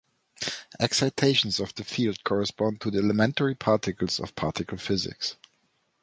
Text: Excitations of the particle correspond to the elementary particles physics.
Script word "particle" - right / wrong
wrong